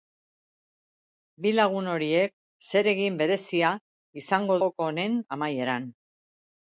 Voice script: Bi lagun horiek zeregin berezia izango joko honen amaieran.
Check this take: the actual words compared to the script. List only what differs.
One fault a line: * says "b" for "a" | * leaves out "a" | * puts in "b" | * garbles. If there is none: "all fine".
all fine